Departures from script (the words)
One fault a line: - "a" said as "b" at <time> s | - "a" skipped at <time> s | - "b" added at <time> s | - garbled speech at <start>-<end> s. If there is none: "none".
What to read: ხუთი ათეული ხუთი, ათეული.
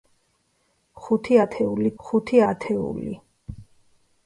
none